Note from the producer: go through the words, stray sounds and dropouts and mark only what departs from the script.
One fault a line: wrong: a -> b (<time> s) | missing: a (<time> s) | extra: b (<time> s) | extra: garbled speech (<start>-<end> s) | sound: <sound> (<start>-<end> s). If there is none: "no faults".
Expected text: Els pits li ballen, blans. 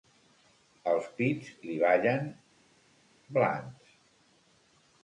no faults